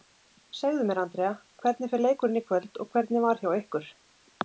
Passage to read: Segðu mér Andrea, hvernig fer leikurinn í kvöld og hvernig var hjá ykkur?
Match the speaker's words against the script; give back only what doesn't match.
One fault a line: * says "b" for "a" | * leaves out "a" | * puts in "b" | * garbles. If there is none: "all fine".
all fine